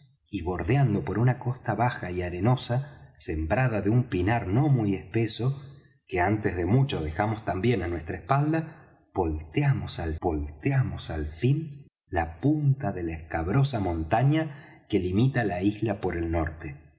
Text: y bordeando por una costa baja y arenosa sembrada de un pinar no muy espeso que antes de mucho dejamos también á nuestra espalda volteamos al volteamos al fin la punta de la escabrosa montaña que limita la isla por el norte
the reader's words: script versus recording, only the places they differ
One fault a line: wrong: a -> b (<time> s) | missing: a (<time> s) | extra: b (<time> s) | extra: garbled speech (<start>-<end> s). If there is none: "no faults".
no faults